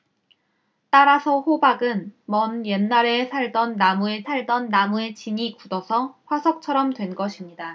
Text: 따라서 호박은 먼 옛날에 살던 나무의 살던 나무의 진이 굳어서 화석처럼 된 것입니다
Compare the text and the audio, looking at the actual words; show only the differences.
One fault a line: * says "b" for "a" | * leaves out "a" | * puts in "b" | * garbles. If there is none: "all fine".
all fine